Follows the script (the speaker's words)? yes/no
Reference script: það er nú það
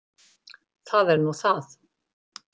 yes